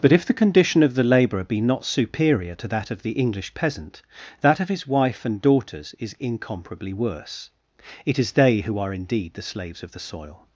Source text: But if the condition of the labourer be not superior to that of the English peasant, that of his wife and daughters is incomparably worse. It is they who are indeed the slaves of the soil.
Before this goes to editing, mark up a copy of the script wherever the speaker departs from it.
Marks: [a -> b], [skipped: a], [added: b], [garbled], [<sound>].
But if the condition of the labourer be not superior to that of the English peasant, that of his wife and daughters is incomparably worse. It is they who are indeed the slaves of the soil.